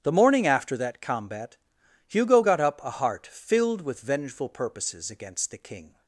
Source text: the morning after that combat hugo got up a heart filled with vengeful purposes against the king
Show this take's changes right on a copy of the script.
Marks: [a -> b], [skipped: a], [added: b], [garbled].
the morning after that combat hugo got up a heart filled with vengeful purposes against the king